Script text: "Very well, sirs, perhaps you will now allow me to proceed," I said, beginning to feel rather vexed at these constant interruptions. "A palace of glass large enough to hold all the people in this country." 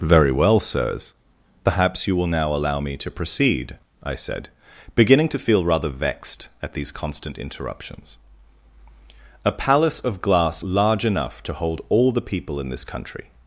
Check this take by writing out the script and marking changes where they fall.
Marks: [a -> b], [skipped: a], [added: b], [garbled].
"Very well, sirs, perhaps you will now allow me to proceed," I said, beginning to feel rather vexed at these constant interruptions. "A palace of glass large enough to hold all the people in this country."